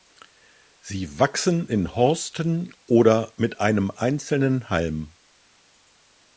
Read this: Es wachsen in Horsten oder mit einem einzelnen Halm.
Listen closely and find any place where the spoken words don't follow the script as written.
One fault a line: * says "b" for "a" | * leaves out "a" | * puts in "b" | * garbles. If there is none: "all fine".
* says "Sie" for "Es"